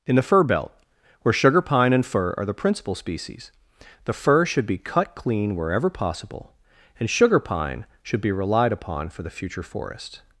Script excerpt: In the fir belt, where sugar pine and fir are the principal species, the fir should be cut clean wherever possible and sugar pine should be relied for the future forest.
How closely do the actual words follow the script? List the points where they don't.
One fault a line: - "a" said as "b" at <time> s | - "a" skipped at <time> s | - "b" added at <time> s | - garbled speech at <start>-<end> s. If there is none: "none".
- "upon" added at 8.7 s